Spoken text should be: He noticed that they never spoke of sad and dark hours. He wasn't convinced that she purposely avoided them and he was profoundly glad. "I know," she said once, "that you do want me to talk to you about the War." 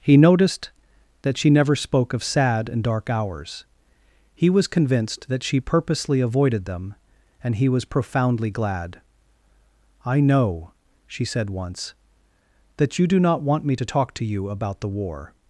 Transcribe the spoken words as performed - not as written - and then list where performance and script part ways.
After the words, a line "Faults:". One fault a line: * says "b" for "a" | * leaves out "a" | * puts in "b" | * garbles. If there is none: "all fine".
He noticed that she never spoke of sad and dark hours. He was convinced that she purposely avoided them and he was profoundly glad. "I know," she said once, "that you do not want me to talk to you about the War."
Faults:
* says "she" for "they"
* says "was" for "wasn't"
* puts in "not"